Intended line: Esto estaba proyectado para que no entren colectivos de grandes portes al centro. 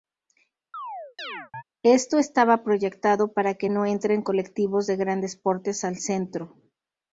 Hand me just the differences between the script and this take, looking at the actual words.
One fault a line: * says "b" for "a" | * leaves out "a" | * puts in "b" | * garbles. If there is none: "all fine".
all fine